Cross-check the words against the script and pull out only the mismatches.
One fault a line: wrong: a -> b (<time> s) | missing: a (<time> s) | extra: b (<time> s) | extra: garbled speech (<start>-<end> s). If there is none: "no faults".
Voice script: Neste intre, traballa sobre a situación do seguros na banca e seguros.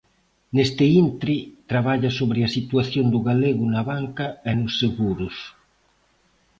wrong: seguros -> galego (3.3 s)
extra: nos (4.6 s)